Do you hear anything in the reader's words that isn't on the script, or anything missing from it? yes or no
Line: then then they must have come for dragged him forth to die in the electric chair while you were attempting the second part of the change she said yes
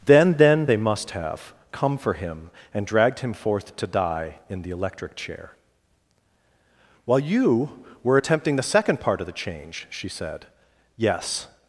yes